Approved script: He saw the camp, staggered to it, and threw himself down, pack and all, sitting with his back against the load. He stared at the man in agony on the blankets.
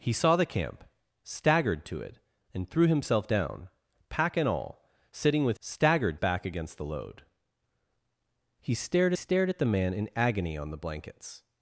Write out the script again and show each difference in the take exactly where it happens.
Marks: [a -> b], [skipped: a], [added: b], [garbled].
He saw the camp, staggered to it, and threw himself down, pack and all, sitting with [his -> staggered] back against the load. He stared [added: stared] at the man in agony on the blankets.